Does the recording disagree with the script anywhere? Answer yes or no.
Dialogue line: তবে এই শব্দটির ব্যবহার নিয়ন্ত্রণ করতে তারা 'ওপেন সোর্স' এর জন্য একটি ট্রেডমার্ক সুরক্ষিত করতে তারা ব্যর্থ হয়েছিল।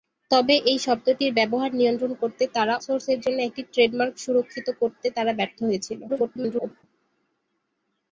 yes